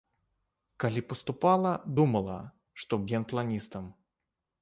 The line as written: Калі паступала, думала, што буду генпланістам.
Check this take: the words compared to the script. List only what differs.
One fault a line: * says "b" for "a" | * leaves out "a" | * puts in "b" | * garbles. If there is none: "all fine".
* leaves out "буду"